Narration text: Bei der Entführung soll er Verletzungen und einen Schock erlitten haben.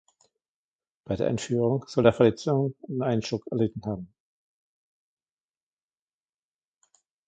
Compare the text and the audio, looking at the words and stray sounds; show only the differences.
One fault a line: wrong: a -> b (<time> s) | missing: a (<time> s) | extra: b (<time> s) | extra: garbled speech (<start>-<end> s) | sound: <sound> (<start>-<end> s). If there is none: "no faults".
no faults